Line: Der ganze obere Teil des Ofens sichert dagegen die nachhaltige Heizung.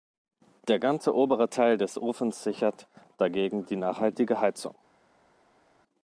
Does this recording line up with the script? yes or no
yes